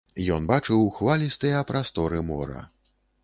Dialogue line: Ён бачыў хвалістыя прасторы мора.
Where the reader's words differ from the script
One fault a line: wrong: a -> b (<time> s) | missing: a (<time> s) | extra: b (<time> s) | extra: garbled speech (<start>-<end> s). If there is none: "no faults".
no faults